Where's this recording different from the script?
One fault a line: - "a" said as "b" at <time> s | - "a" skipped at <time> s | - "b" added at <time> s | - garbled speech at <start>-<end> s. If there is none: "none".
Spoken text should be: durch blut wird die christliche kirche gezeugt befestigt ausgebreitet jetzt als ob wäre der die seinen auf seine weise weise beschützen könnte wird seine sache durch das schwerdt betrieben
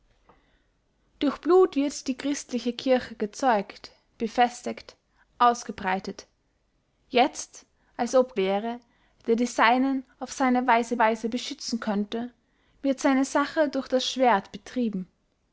none